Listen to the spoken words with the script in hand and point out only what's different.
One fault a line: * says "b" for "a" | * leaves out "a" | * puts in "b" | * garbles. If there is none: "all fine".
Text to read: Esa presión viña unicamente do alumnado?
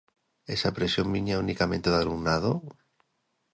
all fine